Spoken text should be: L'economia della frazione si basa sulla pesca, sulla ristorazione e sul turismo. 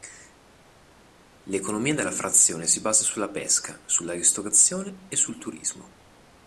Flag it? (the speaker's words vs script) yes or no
no